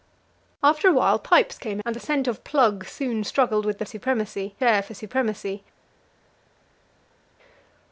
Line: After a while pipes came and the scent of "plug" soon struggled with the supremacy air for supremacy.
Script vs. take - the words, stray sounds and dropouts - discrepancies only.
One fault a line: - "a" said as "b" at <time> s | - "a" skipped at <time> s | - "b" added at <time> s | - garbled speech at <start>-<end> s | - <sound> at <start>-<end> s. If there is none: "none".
none